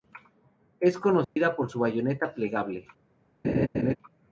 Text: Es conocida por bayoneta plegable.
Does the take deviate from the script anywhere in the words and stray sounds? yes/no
yes